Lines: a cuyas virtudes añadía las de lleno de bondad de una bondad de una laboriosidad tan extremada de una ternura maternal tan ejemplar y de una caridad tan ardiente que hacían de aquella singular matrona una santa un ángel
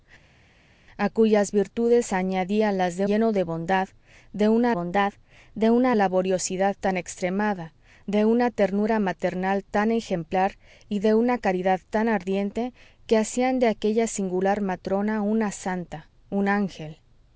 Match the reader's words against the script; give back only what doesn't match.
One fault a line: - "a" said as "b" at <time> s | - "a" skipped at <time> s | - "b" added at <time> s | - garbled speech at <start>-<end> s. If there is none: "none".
none